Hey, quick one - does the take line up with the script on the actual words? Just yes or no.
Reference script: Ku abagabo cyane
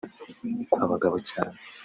yes